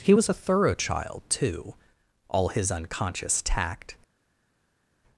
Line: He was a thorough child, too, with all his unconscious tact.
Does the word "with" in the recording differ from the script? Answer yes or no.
yes